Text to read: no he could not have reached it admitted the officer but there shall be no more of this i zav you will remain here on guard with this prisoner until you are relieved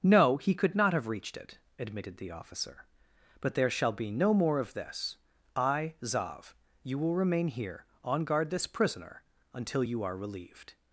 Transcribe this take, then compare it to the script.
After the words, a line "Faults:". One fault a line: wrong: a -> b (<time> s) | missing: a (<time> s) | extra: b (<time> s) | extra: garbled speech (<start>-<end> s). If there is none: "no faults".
no he could not have reached it admitted the officer but there shall be no more of this i zav you will remain here on guard this prisoner until you are relieved
Faults:
missing: with (8.5 s)